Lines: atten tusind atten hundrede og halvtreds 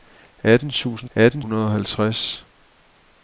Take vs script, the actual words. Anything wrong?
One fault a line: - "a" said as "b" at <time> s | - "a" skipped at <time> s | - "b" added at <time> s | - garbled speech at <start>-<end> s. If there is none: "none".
none